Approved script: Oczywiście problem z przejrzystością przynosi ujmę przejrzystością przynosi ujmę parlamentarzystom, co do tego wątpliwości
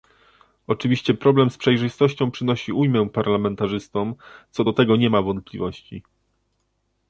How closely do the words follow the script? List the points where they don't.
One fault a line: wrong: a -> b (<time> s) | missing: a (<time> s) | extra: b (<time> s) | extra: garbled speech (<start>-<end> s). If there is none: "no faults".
missing: przejrzystością przynosi ujmę (3.1 s)
extra: nie ma (5.0 s)